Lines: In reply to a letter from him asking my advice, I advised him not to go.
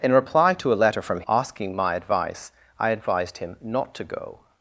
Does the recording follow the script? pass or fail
fail